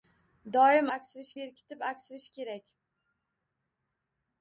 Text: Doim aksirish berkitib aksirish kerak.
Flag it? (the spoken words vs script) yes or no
no